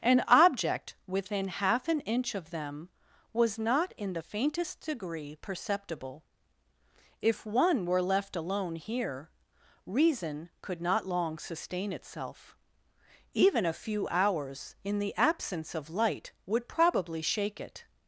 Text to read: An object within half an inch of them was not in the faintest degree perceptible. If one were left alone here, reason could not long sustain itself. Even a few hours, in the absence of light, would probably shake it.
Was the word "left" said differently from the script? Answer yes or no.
no